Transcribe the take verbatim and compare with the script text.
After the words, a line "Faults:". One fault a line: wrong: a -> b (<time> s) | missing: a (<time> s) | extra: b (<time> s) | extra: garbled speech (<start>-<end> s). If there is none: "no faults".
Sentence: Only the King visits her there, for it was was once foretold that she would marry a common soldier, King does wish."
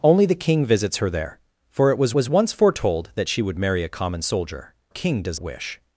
Only the King visits her there, for it was was once foretold that she would marry a common soldier, King does wish."
Faults:
no faults